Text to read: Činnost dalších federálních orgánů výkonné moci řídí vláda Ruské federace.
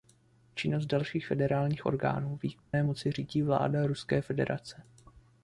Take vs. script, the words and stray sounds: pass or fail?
fail